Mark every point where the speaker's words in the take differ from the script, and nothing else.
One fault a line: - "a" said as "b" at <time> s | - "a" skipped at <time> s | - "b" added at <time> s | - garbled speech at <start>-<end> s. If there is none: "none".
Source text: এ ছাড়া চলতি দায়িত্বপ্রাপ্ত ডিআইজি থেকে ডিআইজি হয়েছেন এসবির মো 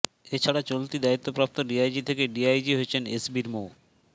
none